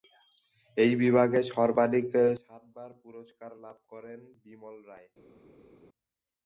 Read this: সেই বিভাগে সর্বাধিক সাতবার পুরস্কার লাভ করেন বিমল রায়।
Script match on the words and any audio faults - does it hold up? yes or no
no